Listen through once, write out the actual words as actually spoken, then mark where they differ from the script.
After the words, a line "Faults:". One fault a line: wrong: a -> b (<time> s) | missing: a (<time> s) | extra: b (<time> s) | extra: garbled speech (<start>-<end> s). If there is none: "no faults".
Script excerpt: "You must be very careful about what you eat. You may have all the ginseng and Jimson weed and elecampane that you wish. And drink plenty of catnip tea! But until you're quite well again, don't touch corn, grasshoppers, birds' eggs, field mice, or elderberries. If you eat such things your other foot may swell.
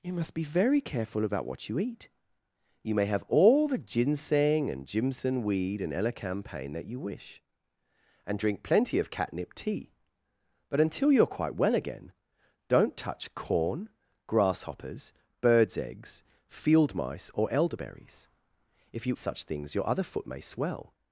"You must be very careful about what you eat. You may have all the ginseng and Jimson weed and elecampane that you wish. And drink plenty of catnip tea! But until you're quite well again, don't touch corn, grasshoppers, birds' eggs, field mice, or elderberries. If you such things your other foot may swell.
Faults:
missing: eat (19.2 s)